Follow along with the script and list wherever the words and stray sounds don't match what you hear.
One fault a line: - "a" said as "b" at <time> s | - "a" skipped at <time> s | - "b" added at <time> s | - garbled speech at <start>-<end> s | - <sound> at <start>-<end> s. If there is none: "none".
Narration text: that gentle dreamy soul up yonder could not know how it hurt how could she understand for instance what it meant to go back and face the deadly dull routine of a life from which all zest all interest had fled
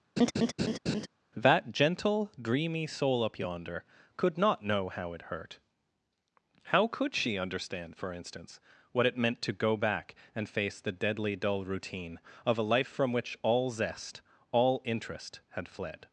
- laugh at 0.2-1.1 s